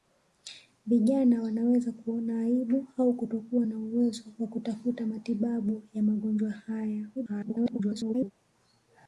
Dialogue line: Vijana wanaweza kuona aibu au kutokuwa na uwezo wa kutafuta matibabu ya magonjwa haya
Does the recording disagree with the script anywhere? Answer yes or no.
yes